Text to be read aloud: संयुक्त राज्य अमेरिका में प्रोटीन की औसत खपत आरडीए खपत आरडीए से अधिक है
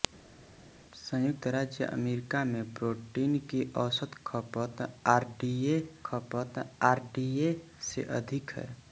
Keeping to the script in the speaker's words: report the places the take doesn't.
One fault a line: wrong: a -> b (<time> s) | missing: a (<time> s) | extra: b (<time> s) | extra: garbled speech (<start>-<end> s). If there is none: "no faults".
no faults